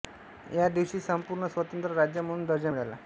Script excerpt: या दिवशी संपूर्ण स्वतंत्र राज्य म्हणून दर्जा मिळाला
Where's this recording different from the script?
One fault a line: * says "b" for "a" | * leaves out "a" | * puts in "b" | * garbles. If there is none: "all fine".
all fine